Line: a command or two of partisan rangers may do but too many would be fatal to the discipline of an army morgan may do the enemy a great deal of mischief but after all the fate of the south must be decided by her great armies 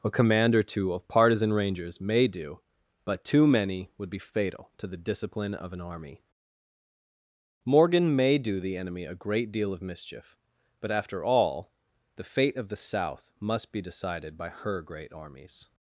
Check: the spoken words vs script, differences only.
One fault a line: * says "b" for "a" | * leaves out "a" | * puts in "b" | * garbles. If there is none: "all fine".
all fine